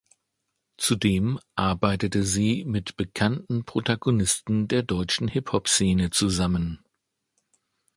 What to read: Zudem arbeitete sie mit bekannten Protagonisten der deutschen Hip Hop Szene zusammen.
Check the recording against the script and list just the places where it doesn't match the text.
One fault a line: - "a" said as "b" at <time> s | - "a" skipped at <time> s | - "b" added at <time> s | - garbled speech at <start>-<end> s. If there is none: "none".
none